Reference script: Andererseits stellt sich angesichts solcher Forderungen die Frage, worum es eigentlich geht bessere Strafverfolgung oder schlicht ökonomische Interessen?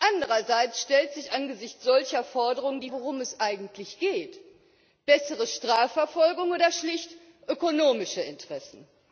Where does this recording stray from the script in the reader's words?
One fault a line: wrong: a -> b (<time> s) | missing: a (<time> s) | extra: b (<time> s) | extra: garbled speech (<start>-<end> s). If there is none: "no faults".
missing: Frage (2.9 s)